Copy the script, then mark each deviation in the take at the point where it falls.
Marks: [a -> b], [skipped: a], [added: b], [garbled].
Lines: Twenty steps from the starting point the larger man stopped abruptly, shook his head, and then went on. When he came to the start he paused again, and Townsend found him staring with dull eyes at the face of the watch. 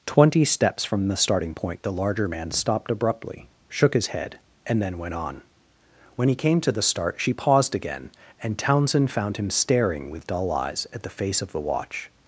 Twenty steps from the starting point the larger man stopped abruptly, shook his head, and then went on. When he came to the start [he -> she] paused again, and Townsend found him staring with dull eyes at the face of the watch.